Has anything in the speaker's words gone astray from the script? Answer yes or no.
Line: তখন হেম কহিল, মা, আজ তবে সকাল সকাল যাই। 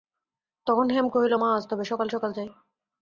no